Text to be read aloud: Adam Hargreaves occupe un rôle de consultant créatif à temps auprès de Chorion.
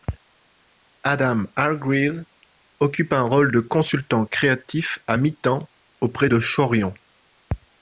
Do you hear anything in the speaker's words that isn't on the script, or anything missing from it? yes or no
yes